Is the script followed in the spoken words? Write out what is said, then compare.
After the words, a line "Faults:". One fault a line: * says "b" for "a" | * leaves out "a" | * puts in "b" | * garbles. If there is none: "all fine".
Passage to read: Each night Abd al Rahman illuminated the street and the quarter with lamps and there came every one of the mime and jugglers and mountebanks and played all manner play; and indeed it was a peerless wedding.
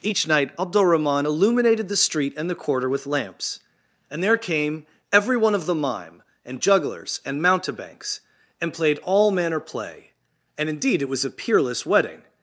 Each night Abd al Rahman illuminated the street and the quarter with lamps and there came every one of the mime and jugglers and mountebanks and played all manner play; and indeed it was a peerless wedding.
Faults:
all fine